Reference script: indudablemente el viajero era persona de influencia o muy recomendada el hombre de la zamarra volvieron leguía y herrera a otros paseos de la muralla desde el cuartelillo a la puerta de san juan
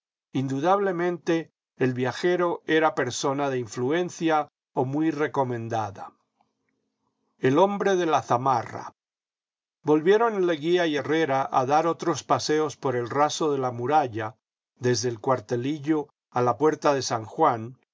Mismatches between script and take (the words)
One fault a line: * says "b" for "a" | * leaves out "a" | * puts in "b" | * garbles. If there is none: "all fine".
* puts in "dar"
* puts in "por el raso"